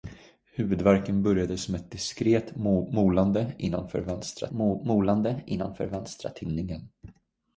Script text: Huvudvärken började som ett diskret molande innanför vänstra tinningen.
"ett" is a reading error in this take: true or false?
false